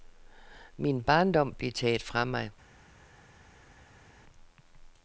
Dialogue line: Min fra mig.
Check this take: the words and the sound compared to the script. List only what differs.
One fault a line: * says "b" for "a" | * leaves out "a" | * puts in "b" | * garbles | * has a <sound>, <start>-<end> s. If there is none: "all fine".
* puts in "barndom blev taget"